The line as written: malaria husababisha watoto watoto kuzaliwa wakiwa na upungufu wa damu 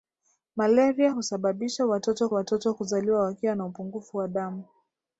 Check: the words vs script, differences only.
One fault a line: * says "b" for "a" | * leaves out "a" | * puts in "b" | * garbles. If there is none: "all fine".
all fine